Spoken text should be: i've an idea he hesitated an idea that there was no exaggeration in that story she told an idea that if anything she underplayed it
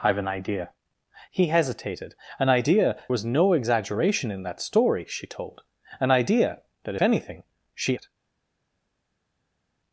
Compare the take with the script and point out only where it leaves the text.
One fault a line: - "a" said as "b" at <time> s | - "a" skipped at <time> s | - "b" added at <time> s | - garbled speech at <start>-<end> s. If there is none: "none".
- "that there" skipped at 3.0 s
- "if" skipped at 7.0 s
- "underplayed" skipped at 8.0 s